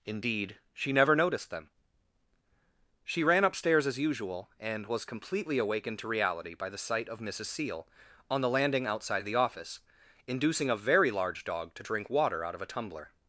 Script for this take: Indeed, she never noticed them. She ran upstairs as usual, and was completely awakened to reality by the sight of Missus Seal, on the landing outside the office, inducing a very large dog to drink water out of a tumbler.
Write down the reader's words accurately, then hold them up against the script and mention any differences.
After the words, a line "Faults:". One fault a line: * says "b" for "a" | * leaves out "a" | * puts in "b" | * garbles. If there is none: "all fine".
Indeed, she never noticed them. She ran upstairs as usual, and was completely awakened to reality by the sight of Missus Seal, on the landing outside the office, inducing a very large dog to drink water out of a tumbler.
Faults:
all fine